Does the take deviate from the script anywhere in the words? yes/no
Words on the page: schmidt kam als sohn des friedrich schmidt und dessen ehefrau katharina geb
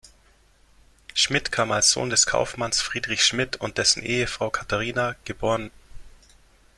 yes